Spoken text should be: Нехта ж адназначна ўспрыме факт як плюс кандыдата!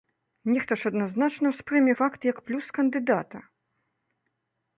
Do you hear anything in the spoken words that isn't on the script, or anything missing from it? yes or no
no